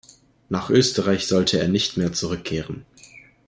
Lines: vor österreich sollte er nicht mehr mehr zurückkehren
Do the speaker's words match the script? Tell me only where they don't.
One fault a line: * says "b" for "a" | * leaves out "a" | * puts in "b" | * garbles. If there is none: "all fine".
* says "nach" for "vor"
* leaves out "mehr"